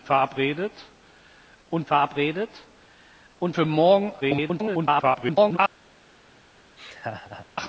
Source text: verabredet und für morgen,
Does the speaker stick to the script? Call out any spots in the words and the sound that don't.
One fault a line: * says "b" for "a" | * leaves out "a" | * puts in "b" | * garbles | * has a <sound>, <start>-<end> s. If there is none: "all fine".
* puts in "verabredet und"
* garbles
* has a laugh, 6.8-7.5 s